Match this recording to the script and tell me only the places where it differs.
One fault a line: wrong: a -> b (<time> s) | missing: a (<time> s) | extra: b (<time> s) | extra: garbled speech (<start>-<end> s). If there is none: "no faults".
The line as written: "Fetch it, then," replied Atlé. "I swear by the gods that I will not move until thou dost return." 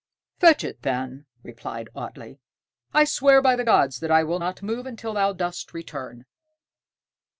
no faults